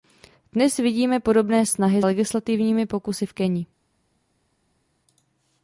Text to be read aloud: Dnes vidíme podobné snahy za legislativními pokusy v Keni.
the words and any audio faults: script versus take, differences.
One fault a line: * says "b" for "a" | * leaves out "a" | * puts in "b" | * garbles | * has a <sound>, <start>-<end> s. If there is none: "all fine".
* leaves out "za"